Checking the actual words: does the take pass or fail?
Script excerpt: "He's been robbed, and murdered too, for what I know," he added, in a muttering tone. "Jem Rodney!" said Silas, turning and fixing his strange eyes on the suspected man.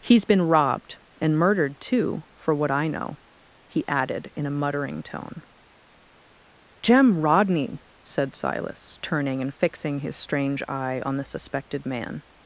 fail